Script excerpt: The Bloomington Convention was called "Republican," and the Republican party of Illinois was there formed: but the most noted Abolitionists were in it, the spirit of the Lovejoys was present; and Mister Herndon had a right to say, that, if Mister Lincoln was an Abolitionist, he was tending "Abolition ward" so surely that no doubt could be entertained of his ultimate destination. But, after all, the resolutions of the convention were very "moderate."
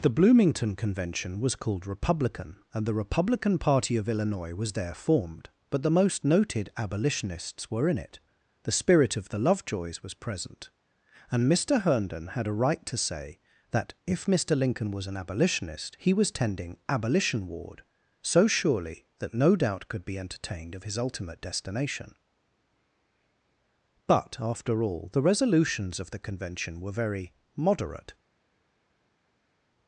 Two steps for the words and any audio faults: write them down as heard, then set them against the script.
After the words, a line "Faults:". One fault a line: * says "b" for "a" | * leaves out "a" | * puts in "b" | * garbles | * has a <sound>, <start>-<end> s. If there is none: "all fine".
The Bloomington Convention was called "Republican," and the Republican party of Illinois was there formed: but the most noted Abolitionists were in it, the spirit of the Lovejoys was present; and Mister Herndon had a right to say, that, if Mister Lincoln was an Abolitionist, he was tending "Abolition ward" so surely that no doubt could be entertained of his ultimate destination. But, after all, the resolutions of the convention were very "moderate."
Faults:
all fine